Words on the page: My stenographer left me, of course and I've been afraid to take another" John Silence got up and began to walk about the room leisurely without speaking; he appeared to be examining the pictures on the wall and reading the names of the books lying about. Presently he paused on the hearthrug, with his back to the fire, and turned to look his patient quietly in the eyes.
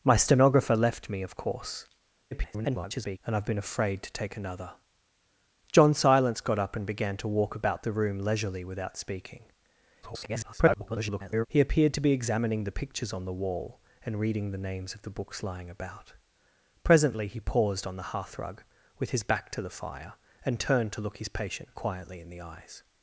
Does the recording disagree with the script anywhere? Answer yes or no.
yes